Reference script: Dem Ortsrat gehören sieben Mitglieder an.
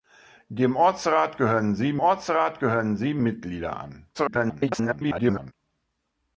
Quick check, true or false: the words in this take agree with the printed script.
false